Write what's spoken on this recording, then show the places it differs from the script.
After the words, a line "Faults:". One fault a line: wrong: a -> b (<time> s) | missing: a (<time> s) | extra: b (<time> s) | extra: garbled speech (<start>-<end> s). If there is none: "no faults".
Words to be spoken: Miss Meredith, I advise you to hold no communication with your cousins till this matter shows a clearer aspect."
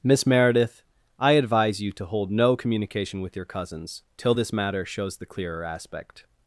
Miss Meredith, I advise you to hold no communication with your cousins till this matter shows the clearer aspect."
Faults:
wrong: a -> the (5.2 s)